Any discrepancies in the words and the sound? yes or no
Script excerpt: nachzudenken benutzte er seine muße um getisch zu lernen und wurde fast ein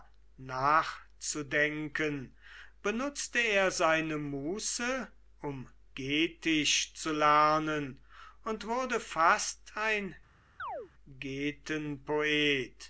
yes